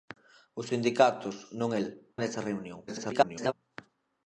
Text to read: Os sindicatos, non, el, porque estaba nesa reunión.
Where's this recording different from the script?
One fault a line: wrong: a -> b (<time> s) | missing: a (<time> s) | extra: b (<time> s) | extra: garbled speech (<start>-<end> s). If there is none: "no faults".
missing: porque estaba (1.9 s)
extra: garbled speech (2.9-3.5 s)